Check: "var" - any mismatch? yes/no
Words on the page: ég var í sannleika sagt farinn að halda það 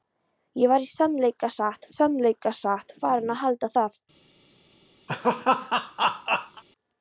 no